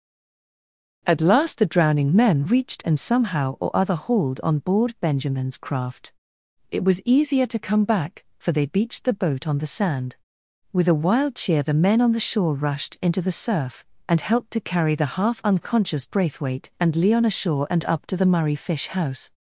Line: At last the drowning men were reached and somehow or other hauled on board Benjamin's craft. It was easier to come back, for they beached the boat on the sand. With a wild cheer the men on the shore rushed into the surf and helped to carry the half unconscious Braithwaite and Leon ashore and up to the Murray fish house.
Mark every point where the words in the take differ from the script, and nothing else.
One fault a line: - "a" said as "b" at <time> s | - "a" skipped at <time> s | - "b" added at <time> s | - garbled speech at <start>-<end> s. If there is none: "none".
- "were" skipped at 2.5 s